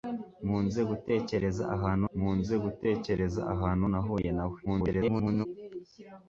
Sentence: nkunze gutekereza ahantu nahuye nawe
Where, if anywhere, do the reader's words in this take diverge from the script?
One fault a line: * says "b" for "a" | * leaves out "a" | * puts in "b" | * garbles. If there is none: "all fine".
* puts in "nkunze gutekereza ahantu"
* garbles